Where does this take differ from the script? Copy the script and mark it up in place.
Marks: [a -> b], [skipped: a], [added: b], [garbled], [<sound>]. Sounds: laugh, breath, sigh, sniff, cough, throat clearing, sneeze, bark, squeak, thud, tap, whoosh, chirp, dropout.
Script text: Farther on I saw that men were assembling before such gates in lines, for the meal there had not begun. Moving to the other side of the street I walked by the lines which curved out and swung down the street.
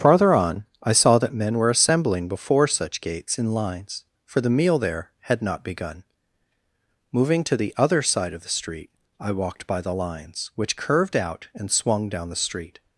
Farther on I saw that men were assembling before such gates in lines, for the meal there had not begun. Moving to the other side of the street I walked by the lines which curved out and swung down the street.